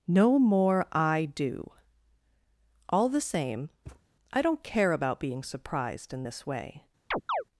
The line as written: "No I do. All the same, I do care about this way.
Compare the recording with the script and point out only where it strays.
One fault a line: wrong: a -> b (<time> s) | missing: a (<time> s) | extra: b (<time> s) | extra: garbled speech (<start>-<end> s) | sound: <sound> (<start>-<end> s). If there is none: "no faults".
extra: more (0.4 s)
sound: thud (3.9-4.0 s)
wrong: do -> don't (4.4 s)
extra: being surprised in (5.2 s)
sound: chirp (7.1-7.4 s)